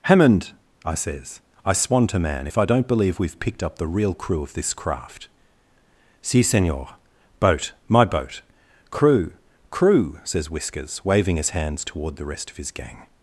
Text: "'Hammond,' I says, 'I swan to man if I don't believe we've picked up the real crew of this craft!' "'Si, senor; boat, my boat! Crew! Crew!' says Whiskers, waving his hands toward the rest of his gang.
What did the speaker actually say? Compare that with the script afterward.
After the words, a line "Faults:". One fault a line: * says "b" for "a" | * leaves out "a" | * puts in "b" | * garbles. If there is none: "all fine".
"'Hammond,' I says, 'I swan to man if I don't believe we've picked up the real crew of this craft!' "'Si, senor; boat, my boat! Crew! Crew!' says Whiskers, waving his hands toward the rest of his gang.
Faults:
all fine